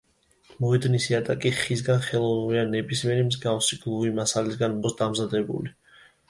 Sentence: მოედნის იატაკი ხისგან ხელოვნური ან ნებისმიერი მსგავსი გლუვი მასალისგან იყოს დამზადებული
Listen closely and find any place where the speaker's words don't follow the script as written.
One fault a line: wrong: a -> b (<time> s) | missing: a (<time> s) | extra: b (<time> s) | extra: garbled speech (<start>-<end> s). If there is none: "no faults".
no faults